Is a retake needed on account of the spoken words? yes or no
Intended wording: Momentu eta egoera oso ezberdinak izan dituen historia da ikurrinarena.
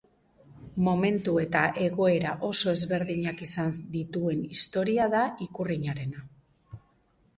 no